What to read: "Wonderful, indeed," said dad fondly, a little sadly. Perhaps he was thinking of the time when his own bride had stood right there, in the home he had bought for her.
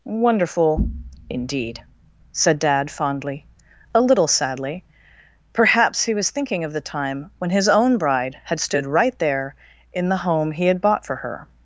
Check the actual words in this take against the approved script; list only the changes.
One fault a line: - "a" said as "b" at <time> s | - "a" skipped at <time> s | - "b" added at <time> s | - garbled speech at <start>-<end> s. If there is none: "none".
none